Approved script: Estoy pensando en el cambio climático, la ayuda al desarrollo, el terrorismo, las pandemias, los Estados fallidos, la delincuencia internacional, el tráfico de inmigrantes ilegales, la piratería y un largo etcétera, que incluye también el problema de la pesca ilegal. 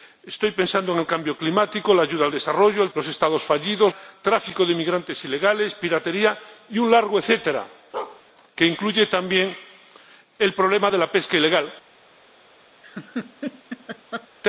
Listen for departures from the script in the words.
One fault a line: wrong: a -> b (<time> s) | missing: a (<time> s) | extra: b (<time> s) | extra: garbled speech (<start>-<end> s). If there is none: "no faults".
missing: terrorismo las pandemias (2.9 s)
missing: la delincuencia internacional (3.9 s)